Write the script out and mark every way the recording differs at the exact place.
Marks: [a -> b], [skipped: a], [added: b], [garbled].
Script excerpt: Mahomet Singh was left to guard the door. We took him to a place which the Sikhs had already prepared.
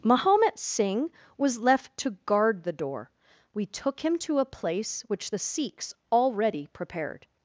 Mahomet Singh was left to guard the door. We took him to a place which the Sikhs [skipped: had] already prepared.